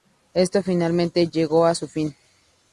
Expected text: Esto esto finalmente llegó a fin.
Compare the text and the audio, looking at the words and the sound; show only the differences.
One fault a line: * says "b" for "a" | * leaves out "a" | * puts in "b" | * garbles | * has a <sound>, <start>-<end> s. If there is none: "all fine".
* leaves out "esto"
* puts in "su"